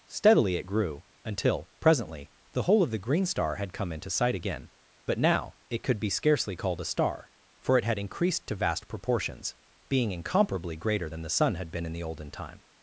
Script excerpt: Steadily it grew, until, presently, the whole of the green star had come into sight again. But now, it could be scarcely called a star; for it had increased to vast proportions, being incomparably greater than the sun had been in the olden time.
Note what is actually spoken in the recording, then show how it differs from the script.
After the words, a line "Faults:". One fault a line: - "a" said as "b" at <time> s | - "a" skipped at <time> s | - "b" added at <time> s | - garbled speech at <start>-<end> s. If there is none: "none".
Steadily it grew, until, presently, the whole of the green star had come into sight again. But now, it could be scarcely called a star; for it had increased to vast proportions, being incomparably greater than the sun had been in the olden time.
Faults:
none